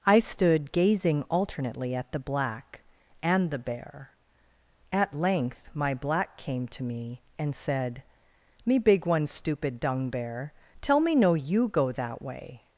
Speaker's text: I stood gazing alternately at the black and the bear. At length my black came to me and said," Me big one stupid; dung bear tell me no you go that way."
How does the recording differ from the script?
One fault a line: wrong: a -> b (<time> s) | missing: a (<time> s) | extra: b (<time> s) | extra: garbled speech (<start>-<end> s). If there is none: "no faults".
no faults